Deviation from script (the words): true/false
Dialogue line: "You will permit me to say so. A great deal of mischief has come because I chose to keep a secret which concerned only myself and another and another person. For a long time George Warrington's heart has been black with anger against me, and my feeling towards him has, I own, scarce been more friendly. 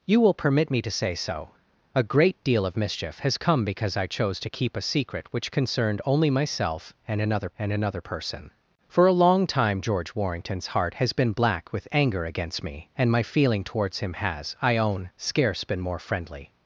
false